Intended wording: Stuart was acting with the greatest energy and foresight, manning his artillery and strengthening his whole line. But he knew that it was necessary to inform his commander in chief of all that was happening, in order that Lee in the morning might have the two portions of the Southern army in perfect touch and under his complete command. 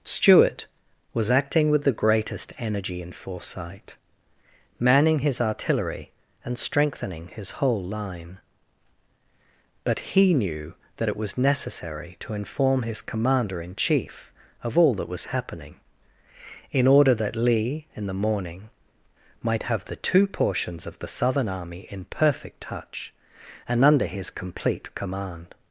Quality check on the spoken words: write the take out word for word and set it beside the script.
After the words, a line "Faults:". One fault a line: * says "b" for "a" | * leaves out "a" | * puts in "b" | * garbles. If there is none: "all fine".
Stuart was acting with the greatest energy and foresight, manning his artillery and strengthening his whole line. But he knew that it was necessary to inform his commander in chief of all that was happening, in order that Lee in the morning might have the two portions of the Southern army in perfect touch and under his complete command.
Faults:
all fine